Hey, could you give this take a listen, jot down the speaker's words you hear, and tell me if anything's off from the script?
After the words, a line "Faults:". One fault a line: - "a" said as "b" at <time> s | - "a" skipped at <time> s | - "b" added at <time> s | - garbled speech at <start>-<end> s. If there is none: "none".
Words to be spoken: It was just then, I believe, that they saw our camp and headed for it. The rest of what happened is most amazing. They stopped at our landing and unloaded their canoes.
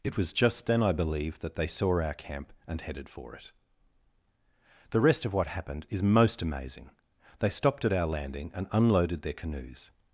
It was just then, I believe, that they saw our camp and headed for it. The rest of what happened is most amazing. They stopped at our landing and unloaded their canoes.
Faults:
none